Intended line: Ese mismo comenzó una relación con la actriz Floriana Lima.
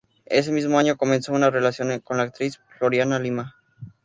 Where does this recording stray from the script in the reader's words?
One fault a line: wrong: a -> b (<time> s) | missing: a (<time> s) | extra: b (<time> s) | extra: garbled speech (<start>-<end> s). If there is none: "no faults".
extra: año (0.8 s)